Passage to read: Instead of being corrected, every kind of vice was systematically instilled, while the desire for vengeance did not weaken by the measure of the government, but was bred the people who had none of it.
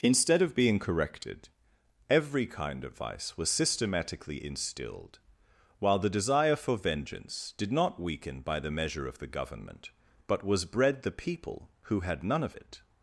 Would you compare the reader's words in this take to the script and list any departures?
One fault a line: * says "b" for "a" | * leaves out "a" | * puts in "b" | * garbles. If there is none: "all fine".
all fine